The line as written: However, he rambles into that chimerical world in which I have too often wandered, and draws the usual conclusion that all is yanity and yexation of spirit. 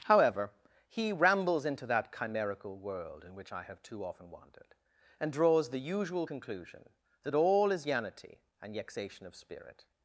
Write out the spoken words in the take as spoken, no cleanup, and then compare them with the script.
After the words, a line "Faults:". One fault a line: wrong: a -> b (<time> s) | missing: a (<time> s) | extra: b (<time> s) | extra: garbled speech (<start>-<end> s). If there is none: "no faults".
However, he rambles into that chimerical world in which I have too often wandered, and draws the usual conclusion that all is yanity and yexation of spirit.
Faults:
no faults